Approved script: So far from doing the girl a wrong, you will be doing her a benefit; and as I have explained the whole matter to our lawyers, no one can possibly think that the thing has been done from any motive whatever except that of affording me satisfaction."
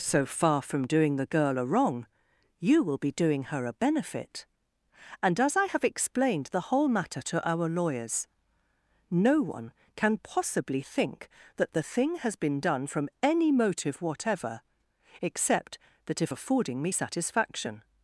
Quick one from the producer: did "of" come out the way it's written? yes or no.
no